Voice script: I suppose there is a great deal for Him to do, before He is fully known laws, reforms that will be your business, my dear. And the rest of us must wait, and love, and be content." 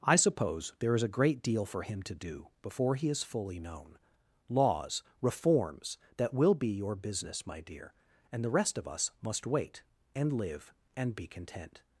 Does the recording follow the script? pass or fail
fail